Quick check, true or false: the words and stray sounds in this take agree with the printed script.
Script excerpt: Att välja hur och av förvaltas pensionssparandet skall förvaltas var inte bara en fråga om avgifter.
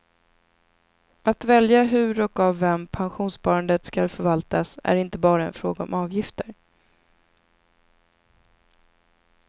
false